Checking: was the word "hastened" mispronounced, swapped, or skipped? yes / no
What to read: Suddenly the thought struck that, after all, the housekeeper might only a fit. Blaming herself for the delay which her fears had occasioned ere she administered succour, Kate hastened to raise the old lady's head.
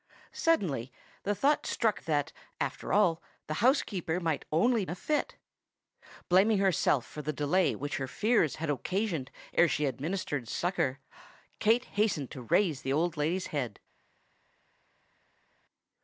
no